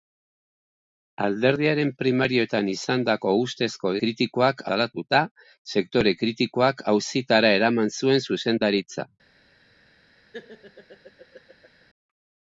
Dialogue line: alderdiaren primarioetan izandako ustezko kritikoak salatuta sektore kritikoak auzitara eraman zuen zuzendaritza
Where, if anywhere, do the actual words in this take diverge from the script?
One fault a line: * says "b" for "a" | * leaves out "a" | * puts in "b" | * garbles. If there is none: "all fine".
all fine